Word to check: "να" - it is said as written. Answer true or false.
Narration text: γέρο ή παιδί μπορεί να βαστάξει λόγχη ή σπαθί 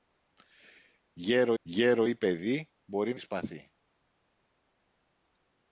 false